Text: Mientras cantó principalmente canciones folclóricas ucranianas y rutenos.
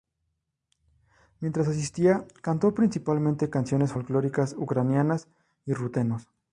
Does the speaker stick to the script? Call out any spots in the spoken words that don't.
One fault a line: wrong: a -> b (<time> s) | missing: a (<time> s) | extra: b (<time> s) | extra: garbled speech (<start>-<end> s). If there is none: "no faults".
extra: asistía (1.7 s)